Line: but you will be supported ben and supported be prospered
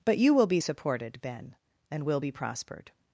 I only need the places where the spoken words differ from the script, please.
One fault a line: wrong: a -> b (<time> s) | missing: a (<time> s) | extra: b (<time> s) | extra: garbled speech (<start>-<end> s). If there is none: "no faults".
wrong: supported -> will (2.0 s)